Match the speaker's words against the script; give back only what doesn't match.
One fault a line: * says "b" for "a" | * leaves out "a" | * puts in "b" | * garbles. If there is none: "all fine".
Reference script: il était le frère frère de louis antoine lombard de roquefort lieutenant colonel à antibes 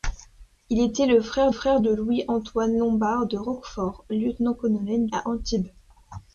all fine